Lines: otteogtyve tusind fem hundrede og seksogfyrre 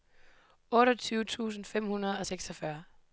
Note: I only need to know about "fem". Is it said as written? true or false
true